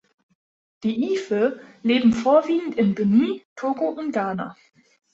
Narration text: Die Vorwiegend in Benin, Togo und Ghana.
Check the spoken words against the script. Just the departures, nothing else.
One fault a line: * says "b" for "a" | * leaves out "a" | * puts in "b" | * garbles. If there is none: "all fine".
* puts in "Ife leben"